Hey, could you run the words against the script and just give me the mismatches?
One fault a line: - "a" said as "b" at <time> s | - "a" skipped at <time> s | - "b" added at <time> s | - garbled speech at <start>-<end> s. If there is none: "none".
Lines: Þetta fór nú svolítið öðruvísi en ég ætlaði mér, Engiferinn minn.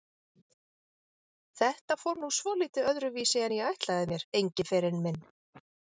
none